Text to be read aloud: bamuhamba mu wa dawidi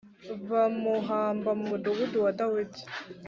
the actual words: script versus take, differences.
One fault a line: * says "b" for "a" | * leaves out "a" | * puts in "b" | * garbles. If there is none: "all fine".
* puts in "mudugudu"